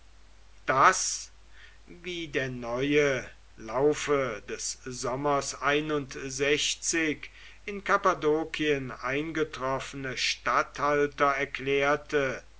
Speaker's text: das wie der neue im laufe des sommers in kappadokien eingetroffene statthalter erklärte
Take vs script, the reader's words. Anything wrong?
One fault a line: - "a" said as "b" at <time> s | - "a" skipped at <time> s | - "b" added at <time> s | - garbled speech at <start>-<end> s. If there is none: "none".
- "im" skipped at 3.3 s